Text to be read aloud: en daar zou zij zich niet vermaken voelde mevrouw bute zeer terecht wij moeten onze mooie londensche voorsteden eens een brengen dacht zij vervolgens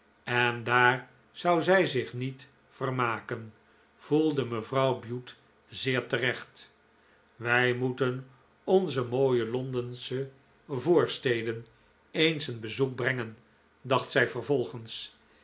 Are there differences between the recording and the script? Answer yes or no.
yes